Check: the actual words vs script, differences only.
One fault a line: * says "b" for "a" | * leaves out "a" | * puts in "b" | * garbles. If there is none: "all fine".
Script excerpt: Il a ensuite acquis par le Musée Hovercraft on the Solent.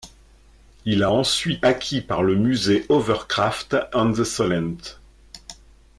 all fine